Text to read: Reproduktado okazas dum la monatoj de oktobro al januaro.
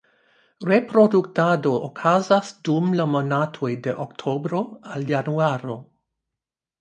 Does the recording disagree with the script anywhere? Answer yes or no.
no